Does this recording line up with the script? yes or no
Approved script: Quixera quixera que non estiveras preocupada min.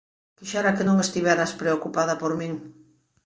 no